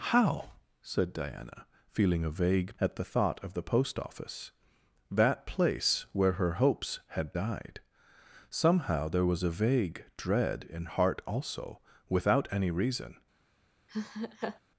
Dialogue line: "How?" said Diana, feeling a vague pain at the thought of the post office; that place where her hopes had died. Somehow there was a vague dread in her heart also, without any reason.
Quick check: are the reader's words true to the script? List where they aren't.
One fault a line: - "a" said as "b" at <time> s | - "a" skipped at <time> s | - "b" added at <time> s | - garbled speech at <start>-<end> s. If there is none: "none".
- "pain" skipped at 2.8 s
- "her" skipped at 10.9 s